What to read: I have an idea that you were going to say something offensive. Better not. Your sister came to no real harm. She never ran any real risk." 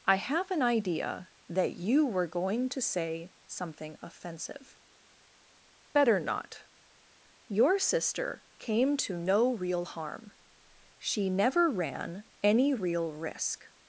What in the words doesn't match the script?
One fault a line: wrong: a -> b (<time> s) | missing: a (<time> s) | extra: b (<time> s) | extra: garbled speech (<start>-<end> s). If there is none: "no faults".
no faults